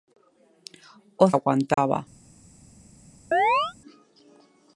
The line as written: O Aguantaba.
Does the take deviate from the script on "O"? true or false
false